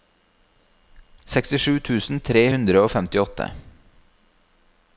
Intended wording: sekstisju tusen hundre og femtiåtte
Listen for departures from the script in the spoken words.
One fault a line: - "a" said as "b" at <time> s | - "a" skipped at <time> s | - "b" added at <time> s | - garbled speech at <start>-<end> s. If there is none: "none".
- "tre" added at 2.3 s